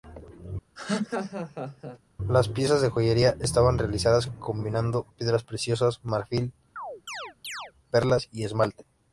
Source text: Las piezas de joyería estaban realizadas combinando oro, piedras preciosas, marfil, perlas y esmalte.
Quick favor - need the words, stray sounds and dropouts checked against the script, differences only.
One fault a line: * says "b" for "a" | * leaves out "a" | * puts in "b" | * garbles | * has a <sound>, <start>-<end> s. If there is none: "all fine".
* has a laugh, 0.8-2.0 s
* leaves out "oro"
* has a chirp, 6.8-7.7 s